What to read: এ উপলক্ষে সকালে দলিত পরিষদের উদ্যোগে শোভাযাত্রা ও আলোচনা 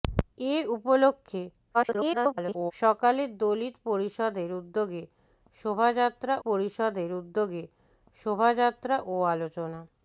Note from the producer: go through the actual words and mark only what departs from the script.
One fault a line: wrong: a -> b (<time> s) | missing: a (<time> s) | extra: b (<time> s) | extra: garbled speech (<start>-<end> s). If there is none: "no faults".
extra: garbled speech (1.7-2.7 s)
extra: পরিষদের উদ্যোগে শোভাযাত্রা (6.5 s)